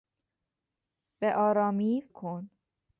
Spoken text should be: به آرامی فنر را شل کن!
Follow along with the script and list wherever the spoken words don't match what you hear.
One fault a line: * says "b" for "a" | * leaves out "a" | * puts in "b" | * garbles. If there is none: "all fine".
* leaves out "فنر را شل"